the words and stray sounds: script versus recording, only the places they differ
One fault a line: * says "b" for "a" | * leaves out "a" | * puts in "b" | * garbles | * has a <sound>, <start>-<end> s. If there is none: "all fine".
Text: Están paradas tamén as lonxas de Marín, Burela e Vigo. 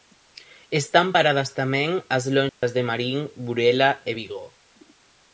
* has a dropout, 2.5-2.6 s